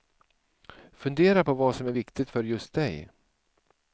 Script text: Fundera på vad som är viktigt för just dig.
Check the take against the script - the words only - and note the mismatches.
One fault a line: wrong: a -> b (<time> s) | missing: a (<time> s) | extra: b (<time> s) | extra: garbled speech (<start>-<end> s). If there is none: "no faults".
no faults